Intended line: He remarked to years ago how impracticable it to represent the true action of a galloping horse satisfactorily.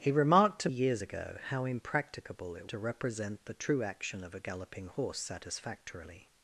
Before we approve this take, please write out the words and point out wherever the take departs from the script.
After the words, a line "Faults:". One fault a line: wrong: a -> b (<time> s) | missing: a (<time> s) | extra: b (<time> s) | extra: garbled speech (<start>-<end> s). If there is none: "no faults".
He remarked to years ago how impracticable it to represent the true action of a galloping horse satisfactorily.
Faults:
no faults